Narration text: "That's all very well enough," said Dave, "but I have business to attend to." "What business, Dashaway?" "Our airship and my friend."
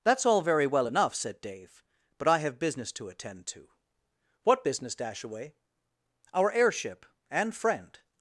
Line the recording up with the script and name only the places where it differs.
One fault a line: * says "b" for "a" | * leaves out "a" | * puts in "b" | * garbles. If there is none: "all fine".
* leaves out "my"